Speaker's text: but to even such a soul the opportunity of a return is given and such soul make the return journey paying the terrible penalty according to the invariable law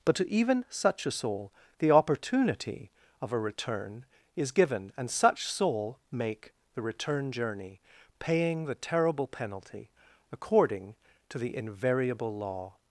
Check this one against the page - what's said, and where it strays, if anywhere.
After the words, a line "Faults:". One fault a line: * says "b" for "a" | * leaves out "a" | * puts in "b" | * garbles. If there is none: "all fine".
but to even such a soul the opportunity of a return is given and such soul make the return journey paying the terrible penalty according to the invariable law
Faults:
all fine